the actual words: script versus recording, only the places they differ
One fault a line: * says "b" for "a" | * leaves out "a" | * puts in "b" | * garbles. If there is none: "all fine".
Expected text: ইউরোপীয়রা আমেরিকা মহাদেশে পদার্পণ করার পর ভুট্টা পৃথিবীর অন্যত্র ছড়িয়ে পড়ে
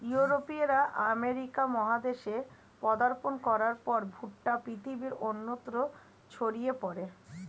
all fine